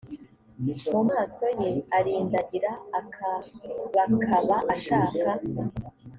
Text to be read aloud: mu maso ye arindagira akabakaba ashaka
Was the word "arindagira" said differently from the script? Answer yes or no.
no